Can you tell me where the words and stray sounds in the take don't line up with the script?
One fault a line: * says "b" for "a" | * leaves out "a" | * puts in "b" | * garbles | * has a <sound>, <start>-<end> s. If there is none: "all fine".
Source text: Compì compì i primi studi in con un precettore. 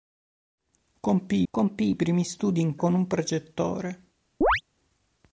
* has a chirp, 4.4-4.6 s